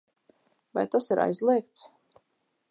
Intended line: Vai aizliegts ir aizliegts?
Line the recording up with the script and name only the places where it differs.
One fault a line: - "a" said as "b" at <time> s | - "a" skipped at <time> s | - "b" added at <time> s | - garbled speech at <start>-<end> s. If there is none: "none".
- "aizliegts" said as "tas" at 0.9 s